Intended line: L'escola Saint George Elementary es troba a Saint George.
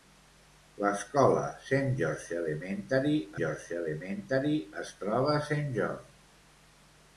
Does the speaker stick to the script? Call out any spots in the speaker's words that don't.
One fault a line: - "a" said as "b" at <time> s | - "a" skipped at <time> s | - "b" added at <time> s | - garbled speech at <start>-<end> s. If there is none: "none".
- "George Elementary" added at 3.4 s